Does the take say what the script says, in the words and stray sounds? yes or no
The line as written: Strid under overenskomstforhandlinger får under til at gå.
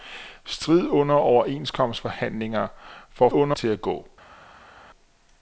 yes